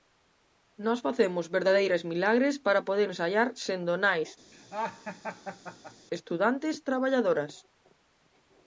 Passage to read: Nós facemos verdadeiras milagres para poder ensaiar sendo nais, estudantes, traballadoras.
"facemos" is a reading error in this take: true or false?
false